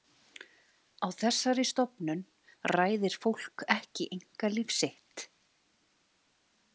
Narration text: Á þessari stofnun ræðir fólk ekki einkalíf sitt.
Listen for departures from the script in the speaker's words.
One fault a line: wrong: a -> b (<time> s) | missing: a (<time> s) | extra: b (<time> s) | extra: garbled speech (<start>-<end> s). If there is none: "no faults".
no faults